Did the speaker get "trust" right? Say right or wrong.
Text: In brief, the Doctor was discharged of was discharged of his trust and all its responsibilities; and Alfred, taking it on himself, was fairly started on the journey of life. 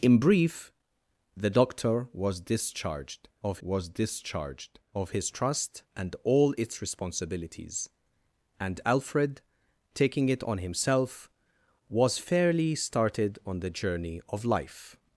right